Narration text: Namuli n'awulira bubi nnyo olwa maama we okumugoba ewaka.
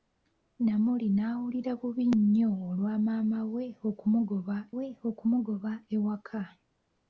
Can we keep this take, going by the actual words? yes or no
no